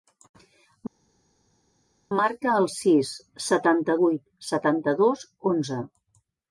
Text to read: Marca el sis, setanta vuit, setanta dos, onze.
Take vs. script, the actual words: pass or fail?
pass